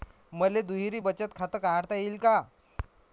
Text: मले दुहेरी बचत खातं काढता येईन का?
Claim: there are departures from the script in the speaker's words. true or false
false